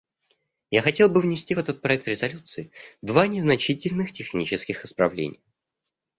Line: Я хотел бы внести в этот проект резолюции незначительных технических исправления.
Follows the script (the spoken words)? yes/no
no